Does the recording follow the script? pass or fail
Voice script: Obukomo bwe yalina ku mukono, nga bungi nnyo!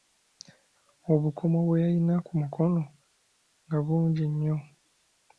pass